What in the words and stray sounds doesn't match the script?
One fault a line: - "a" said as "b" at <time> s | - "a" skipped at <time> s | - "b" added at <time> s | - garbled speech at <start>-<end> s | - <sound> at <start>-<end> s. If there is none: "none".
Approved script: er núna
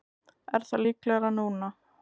- "það líklegra" added at 0.7 s